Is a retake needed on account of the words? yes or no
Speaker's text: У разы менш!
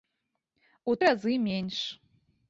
no